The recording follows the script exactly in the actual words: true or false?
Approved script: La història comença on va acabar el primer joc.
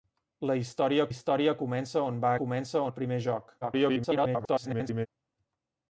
false